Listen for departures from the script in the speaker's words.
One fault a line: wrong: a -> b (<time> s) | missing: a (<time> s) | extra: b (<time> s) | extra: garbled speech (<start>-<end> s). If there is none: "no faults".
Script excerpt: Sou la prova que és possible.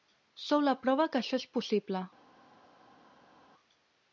extra: això (1.2 s)